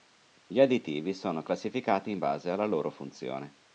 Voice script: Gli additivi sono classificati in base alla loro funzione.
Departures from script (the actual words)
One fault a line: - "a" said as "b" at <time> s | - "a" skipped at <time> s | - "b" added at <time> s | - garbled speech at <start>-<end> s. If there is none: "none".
none